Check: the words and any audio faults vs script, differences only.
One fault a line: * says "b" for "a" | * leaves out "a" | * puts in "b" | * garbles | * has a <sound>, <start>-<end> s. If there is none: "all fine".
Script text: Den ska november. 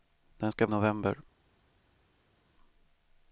all fine